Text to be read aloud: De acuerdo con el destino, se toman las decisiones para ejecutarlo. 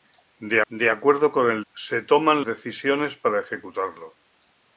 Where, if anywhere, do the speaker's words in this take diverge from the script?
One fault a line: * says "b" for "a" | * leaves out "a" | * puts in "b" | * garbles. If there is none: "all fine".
* puts in "de"
* leaves out "destino"
* leaves out "las"